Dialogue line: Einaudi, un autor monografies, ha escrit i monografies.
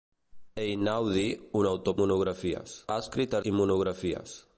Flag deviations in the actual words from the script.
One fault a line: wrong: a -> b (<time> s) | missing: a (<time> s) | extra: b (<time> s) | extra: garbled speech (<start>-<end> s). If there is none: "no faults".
no faults